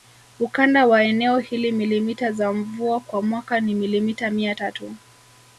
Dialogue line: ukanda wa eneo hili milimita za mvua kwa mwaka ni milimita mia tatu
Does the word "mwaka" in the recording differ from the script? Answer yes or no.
no